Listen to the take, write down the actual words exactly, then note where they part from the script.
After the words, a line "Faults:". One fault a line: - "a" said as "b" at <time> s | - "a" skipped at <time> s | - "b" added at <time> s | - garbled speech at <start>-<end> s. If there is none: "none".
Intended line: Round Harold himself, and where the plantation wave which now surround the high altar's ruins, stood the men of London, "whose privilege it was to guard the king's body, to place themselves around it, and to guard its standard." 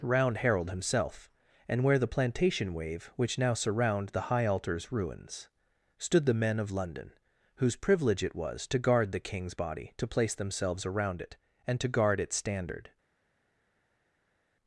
Round Harold himself, and where the plantation wave which now surround the high altar's ruins, stood the men of London, "whose privilege it was to guard the king's body, to place themselves around it, and to guard its standard."
Faults:
none